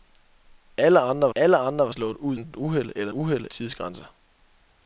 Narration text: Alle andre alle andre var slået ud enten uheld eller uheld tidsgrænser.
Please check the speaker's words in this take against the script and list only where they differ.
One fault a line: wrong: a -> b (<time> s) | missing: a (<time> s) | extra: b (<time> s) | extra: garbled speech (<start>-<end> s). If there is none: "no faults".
no faults